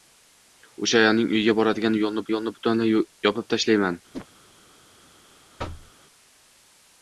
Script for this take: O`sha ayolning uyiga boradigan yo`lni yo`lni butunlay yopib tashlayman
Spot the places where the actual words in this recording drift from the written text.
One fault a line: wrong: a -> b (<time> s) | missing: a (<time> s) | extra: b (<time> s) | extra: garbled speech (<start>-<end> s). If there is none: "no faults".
no faults